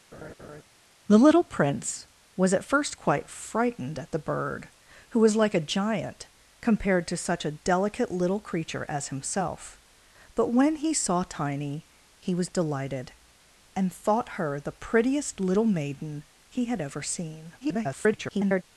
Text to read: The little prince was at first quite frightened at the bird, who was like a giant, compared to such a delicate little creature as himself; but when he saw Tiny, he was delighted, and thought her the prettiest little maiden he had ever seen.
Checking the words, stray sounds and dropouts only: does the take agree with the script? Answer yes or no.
no